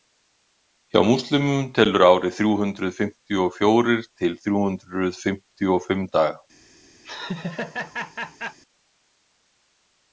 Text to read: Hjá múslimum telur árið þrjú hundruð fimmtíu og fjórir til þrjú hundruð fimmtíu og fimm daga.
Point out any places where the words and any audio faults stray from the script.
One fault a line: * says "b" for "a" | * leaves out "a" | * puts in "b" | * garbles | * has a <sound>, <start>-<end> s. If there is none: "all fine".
* has a laugh, 7.0-8.6 s